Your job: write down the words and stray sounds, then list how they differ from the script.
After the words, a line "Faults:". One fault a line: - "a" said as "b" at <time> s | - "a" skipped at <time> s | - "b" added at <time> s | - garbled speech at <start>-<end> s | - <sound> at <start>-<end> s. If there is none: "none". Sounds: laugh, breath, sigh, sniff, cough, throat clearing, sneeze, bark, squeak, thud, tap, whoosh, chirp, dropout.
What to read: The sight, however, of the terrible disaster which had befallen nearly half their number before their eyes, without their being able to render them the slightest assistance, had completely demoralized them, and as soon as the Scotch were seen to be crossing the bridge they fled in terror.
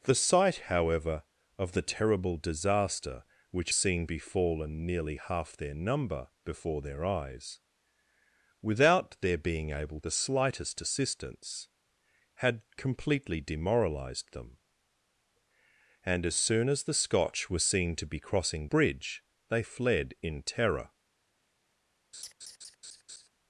The sight, however, of the terrible disaster which seen befallen nearly half their number before their eyes, without their being able the slightest assistance, had completely demoralized them, and as soon as the Scotch were seen to be crossing bridge they fled in terror.
Faults:
- "had" said as "seen" at 3.7 s
- "to render them" skipped at 10.0 s
- "the" skipped at 18.7 s
- laugh at 22.1-23.3 s